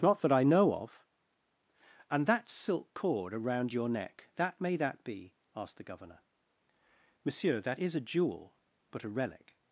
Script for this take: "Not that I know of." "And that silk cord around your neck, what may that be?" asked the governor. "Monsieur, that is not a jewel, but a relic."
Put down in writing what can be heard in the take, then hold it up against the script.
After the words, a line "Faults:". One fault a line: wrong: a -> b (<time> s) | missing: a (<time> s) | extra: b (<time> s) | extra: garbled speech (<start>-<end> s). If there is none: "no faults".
"Not that I know of." "And that silk cord around your neck, that may that be?" asked the governor. "Monsieur, that is a jewel, but a relic."
Faults:
wrong: what -> that (4.4 s)
missing: not (8.0 s)